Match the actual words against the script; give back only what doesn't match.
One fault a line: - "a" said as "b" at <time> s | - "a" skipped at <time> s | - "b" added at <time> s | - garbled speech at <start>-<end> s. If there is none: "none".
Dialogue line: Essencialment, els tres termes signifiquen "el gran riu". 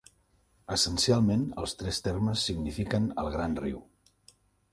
none